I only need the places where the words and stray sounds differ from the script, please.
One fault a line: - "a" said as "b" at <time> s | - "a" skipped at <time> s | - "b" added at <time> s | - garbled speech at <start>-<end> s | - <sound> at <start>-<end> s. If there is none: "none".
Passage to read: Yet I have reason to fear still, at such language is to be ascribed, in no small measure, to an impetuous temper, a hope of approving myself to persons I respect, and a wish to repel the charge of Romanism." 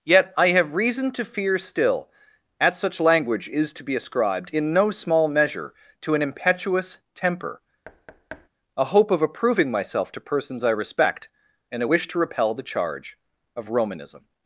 - thud at 7.8-8.5 s